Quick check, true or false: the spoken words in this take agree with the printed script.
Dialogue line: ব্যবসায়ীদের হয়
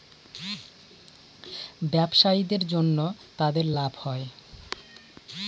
false